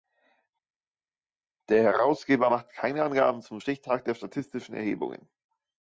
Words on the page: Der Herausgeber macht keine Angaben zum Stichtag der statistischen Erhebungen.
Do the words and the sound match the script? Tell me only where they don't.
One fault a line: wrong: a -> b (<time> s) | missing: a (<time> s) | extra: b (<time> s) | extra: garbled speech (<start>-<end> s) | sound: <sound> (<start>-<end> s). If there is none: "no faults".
no faults